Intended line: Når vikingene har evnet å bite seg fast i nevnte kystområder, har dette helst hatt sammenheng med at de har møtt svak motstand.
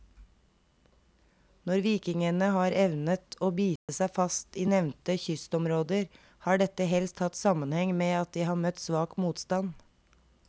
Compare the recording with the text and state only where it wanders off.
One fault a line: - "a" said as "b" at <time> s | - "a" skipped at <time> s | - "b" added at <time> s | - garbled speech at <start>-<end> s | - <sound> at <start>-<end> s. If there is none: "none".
- dropout at 3.8-3.9 s